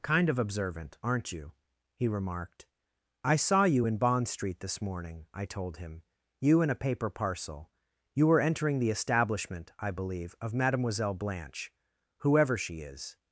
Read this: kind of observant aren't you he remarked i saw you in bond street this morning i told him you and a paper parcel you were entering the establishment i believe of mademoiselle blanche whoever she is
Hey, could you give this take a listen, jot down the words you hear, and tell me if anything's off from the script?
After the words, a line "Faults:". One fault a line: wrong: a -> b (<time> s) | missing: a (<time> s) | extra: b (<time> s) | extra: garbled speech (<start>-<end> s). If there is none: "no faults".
kind of observant aren't you he remarked i saw you in bond street this morning i told him you and a paper parcel you were entering the establishment i believe of mademoiselle blanche whoever she is
Faults:
no faults